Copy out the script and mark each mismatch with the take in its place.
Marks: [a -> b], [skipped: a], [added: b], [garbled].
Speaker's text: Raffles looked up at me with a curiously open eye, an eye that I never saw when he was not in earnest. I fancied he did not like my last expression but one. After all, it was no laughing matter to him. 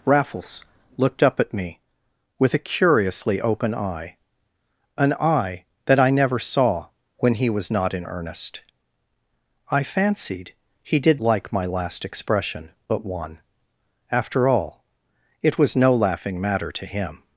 Raffles looked up at me with a curiously open eye, an eye that I never saw when he was not in earnest. I fancied he did [skipped: not] like my last expression but one. After all, it was no laughing matter to him.